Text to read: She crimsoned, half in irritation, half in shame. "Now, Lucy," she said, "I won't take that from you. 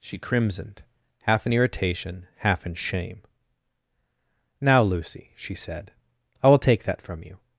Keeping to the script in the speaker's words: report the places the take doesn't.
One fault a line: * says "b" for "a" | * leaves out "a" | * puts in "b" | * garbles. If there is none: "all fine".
* says "will" for "won't"